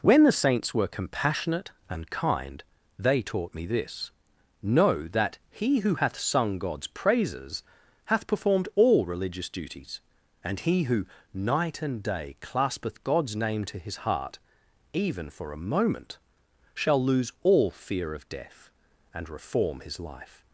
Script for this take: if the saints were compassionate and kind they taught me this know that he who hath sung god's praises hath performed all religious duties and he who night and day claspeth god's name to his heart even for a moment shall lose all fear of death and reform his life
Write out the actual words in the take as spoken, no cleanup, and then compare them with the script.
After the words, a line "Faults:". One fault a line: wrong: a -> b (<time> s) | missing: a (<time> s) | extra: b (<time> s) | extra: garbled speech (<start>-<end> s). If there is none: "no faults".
when the saints were compassionate and kind they taught me this know that he who hath sung god's praises hath performed all religious duties and he who night and day claspeth god's name to his heart even for a moment shall lose all fear of death and reform his life
Faults:
wrong: if -> when (0.0 s)